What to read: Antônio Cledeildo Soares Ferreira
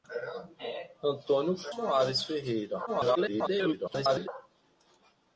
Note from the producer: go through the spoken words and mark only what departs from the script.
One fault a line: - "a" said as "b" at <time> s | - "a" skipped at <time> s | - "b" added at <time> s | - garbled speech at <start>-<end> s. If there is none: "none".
- "Cledeildo" skipped at 1.5 s
- garbled speech at 2.9-4.3 s